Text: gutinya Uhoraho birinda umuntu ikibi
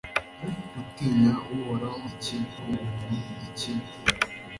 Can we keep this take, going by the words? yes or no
no